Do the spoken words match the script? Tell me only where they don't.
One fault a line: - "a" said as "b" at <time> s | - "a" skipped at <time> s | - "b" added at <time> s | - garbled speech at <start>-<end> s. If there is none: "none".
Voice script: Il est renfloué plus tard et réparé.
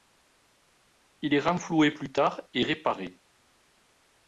none